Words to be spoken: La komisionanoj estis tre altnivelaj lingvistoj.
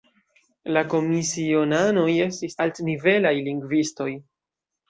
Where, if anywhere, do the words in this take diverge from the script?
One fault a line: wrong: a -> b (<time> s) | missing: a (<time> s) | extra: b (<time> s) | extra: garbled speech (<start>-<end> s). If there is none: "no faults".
missing: tre (2.6 s)